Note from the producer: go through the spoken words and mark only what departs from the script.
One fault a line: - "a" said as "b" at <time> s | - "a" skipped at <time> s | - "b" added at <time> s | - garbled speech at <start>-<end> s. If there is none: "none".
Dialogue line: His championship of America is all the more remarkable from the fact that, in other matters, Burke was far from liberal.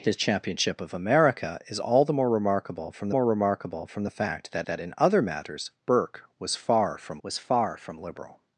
- "more remarkable from" added at 3.1 s
- "that" added at 4.7 s
- "was far from" added at 7.2 s